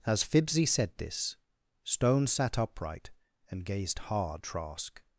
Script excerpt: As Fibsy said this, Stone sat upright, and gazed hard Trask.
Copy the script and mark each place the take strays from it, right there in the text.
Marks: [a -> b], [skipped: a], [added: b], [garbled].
As Fibsy said this, Stone sat upright, and gazed hard Trask.